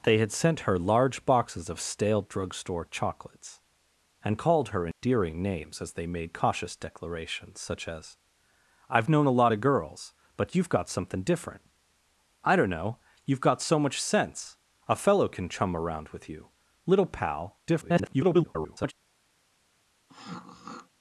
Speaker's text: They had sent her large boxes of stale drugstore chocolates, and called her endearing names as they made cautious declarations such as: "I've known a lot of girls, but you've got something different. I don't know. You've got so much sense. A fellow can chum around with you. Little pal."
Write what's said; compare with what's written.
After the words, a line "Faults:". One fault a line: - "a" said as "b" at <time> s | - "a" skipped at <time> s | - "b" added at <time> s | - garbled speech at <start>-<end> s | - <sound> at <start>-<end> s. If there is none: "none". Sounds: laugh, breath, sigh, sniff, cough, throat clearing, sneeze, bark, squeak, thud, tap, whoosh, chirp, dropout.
They had sent her large boxes of stale drugstore chocolates, and called her endearing names as they made cautious declarations such as: "I've known a lot of girls, but you've got something different. I don't know. You've got so much sense. A fellow can chum around with you. Little pal." [garbled]
Faults:
- dropout at 4.9-5.0 s
- garbled speech at 17.7-18.9 s
- throat clearing at 20.1-20.9 s